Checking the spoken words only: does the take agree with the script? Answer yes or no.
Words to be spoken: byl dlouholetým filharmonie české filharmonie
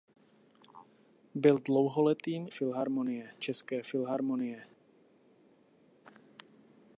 yes